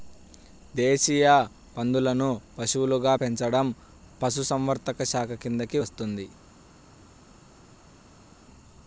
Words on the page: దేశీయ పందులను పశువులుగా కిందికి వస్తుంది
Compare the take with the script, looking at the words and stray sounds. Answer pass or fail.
fail